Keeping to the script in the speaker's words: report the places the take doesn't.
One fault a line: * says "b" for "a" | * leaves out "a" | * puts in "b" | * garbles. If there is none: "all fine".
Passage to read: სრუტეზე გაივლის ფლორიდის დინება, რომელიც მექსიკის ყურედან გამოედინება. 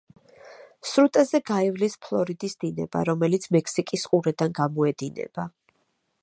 all fine